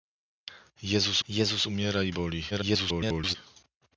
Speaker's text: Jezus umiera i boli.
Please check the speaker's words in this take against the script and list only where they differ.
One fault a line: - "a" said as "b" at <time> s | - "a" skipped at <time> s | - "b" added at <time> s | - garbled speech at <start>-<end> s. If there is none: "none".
- "jezus" added at 1.3 s
- garbled speech at 2.5-3.4 s